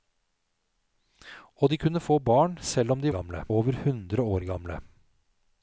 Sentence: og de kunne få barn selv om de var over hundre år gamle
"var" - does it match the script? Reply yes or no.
no